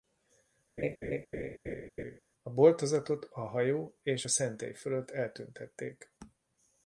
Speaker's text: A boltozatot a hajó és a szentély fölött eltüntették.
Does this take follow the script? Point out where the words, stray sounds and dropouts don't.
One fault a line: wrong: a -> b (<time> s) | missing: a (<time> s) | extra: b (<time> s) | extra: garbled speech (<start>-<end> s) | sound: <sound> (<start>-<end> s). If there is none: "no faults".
sound: laugh (0.8-2.2 s)